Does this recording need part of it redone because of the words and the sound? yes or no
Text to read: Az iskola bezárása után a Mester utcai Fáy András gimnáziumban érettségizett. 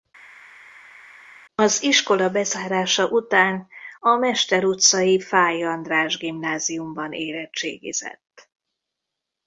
no